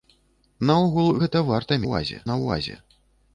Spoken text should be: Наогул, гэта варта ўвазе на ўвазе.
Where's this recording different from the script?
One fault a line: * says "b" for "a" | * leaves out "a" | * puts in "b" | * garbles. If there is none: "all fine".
all fine